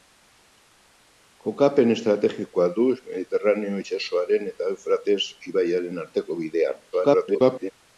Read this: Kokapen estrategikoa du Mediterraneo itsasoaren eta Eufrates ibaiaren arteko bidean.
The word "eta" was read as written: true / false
true